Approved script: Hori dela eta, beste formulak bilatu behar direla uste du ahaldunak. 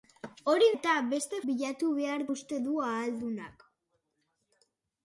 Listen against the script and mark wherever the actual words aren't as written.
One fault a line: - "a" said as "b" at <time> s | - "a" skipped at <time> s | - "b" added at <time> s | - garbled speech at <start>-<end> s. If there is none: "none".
- "dela" skipped at 0.7 s
- "formulak" skipped at 1.4 s
- "direla" skipped at 2.3 s